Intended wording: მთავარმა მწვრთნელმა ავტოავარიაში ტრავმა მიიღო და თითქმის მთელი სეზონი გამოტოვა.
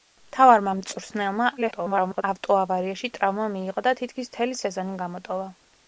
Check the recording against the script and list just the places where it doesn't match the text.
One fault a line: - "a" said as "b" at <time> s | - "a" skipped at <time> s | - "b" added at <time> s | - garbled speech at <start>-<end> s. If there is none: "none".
- garbled speech at 1.6-2.2 s